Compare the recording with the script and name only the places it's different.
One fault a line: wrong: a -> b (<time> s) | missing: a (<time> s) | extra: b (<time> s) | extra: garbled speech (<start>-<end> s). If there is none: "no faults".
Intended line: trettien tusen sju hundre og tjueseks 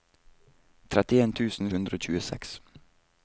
missing: sju (1.7 s)